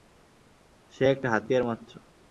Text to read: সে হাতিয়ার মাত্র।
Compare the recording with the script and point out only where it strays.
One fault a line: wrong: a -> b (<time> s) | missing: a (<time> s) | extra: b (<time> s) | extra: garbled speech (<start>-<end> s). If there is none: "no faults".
extra: একটা (1.1 s)